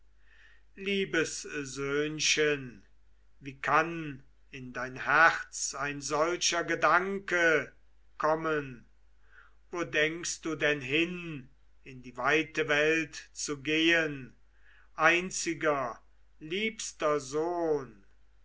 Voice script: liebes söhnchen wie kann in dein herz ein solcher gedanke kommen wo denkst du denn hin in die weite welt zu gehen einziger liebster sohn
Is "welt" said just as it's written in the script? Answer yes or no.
yes